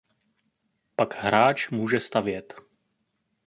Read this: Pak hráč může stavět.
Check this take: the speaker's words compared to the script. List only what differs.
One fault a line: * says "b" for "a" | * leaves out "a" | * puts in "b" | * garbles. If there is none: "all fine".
all fine